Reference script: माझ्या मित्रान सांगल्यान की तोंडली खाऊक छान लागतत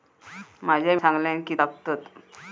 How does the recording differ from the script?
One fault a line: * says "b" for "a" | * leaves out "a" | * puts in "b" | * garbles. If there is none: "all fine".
* leaves out "मित्रान"
* leaves out "तोंडली खाऊक छान"